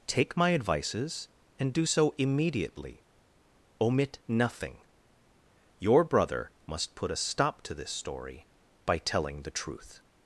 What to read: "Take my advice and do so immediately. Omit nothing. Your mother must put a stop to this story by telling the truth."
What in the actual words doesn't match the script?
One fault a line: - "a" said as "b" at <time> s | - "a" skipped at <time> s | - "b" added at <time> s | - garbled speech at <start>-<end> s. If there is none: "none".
- "advice" said as "advices" at 0.5 s
- "mother" said as "brother" at 6.0 s